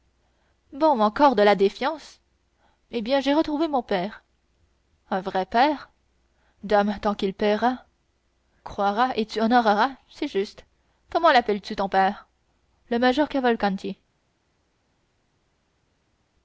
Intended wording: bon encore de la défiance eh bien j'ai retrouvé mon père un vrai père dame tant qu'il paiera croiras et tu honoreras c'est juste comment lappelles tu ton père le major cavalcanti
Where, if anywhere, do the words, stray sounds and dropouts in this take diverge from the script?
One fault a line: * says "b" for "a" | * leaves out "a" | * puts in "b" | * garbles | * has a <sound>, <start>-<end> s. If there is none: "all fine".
all fine